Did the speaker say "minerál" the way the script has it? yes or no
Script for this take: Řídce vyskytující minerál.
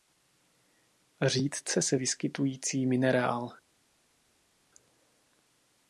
yes